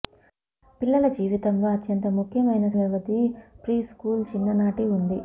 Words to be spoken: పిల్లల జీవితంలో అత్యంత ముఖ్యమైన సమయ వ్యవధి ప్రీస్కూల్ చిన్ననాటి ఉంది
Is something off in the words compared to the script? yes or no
yes